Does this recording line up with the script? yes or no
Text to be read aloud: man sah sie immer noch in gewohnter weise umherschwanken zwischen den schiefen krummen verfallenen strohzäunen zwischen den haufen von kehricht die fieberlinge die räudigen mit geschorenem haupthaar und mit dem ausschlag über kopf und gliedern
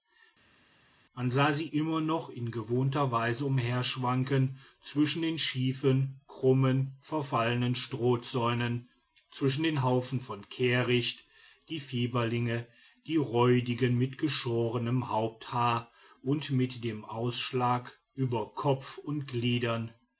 yes